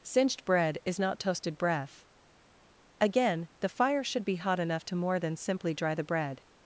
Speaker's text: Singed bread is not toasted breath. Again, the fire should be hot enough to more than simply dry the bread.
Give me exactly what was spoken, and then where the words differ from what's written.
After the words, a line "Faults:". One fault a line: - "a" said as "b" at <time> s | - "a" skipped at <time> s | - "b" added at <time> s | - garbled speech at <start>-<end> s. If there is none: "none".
Singed bread is not toasted breath. Again, the fire should be hot enough to more than simply dry the bread.
Faults:
none